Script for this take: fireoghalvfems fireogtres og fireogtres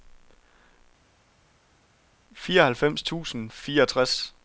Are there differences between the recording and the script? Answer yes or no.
yes